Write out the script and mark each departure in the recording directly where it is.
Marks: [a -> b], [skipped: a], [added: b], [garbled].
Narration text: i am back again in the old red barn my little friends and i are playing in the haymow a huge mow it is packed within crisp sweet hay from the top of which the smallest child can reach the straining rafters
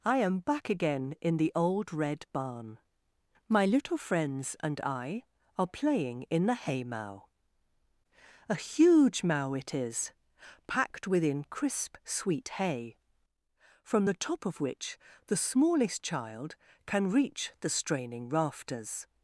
i am back again in the old red barn my little friends and i are playing in the haymow a huge mow it is packed within crisp sweet hay from the top of which the smallest child can reach the straining rafters